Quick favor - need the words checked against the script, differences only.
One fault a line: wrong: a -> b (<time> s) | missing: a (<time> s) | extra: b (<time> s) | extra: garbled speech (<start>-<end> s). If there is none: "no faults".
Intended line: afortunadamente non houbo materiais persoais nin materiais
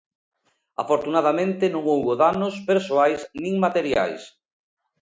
wrong: materiais -> danos (2.2 s)